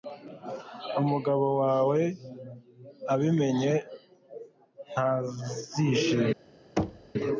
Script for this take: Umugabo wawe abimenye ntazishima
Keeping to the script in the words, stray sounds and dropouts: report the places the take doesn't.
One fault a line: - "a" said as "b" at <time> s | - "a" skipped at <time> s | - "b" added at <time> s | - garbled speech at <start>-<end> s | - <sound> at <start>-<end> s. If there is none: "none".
- thud at 6.8-7.1 s